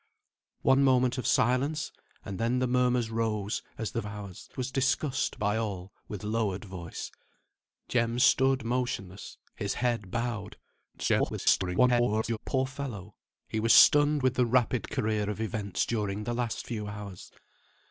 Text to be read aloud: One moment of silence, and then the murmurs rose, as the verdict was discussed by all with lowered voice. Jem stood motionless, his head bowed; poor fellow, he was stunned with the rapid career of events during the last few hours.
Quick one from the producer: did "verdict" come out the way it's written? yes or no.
no